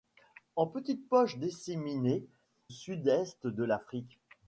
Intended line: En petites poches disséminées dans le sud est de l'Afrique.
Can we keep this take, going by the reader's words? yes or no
no